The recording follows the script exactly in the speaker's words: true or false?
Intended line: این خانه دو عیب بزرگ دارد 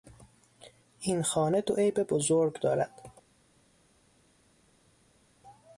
true